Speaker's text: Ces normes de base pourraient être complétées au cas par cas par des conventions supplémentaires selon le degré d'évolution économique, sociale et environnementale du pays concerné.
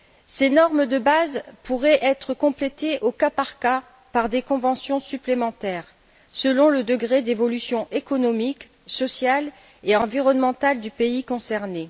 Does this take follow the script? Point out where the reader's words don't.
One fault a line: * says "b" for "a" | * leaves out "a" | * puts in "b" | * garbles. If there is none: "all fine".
all fine